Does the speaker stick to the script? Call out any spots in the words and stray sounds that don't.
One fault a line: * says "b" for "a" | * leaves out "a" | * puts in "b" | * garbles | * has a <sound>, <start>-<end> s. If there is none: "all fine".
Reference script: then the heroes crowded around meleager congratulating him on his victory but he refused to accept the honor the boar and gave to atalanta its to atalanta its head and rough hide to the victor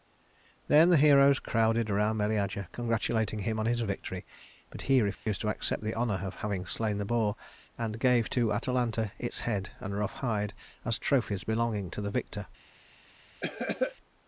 * has a dropout, 5.1-5.3 s
* puts in "of having slain"
* leaves out "to atalanta its"
* puts in "as trophies belonging"
* has a cough, 13.4-14.0 s